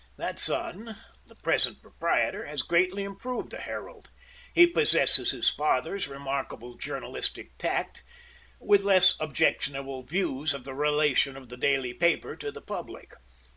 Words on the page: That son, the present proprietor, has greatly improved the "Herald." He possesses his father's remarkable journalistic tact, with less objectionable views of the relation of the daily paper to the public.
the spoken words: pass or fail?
pass